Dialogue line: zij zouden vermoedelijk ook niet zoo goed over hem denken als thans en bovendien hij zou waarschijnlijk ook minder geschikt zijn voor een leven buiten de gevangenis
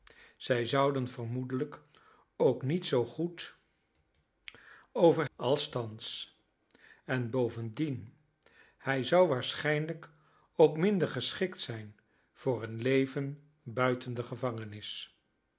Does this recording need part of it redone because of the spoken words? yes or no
yes